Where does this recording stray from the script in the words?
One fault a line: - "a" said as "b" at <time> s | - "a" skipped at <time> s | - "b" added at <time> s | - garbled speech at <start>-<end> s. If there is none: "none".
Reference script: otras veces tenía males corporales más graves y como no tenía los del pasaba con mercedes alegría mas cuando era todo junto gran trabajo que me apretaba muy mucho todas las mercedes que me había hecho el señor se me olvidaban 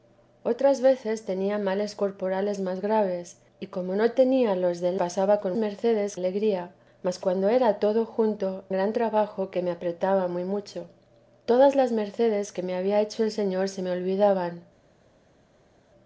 none